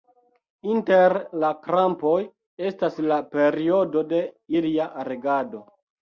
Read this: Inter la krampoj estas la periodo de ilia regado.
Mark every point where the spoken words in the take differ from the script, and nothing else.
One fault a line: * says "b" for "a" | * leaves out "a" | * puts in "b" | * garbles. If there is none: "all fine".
all fine